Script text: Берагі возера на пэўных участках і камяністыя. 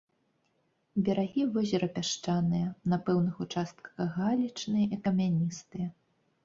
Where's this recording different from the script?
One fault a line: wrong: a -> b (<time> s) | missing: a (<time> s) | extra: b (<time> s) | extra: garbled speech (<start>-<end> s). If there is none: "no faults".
extra: пясчаныя (2.0 s)
extra: галечныя (4.2 s)